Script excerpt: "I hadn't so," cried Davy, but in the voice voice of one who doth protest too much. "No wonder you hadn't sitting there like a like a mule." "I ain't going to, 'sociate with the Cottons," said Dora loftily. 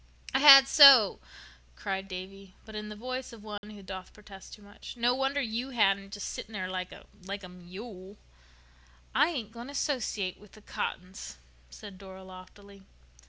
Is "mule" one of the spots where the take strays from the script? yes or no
no